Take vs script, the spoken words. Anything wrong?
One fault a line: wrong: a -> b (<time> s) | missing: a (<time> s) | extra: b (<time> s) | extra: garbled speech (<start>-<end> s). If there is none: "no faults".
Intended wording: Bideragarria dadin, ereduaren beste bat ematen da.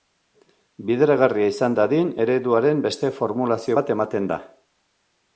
extra: izan (1.5 s)
extra: formulazio (3.2 s)